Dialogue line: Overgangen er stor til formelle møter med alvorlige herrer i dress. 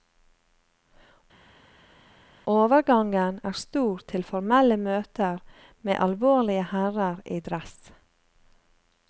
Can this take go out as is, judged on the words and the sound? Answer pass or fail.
pass